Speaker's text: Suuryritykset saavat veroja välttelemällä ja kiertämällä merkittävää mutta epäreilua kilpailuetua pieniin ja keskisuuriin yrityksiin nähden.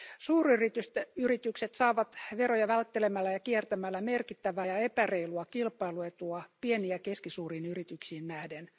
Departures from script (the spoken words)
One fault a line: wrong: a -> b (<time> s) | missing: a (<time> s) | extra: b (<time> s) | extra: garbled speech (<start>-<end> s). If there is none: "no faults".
wrong: mutta -> ja (4.6 s)